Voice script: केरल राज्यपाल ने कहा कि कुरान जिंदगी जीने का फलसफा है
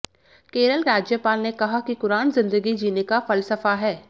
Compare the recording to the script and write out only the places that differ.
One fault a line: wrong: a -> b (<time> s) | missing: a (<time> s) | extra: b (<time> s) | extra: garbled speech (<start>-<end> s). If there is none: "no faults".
no faults